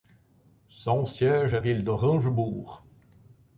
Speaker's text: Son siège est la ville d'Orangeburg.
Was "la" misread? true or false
true